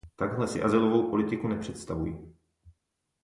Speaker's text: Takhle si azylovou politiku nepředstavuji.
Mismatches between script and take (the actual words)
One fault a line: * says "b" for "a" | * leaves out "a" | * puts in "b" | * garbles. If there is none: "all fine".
all fine